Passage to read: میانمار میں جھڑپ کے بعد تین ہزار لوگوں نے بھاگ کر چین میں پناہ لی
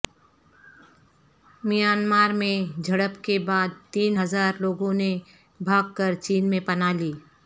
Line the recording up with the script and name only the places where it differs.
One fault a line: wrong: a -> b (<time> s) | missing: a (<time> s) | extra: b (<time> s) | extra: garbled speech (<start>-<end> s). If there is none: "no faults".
no faults